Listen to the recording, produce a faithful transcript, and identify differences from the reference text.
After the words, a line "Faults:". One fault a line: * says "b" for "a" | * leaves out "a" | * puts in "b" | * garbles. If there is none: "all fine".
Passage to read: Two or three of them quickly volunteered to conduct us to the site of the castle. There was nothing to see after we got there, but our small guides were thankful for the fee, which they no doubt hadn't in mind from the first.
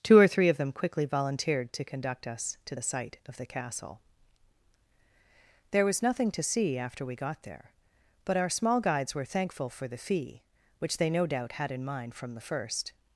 Two or three of them quickly volunteered to conduct us to the site of the castle. There was nothing to see after we got there, but our small guides were thankful for the fee, which they no doubt had in mind from the first.
Faults:
* says "had" for "hadn't"